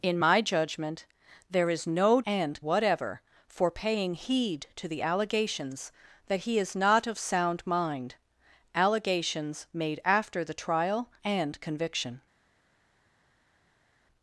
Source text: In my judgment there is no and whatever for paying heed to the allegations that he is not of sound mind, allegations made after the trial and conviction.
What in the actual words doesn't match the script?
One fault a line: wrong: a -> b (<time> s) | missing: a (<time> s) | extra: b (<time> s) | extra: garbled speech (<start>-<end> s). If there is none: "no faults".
no faults